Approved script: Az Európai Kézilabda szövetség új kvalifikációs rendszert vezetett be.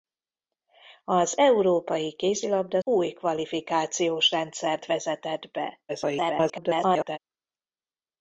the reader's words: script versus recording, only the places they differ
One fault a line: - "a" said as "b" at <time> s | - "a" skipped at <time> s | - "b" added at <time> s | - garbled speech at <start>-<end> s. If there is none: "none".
- "szövetség" skipped at 2.8 s
- garbled speech at 5.9-7.2 s